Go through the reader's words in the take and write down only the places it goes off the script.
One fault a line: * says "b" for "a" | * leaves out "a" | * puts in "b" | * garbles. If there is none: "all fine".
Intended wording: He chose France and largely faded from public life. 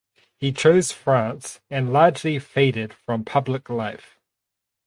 all fine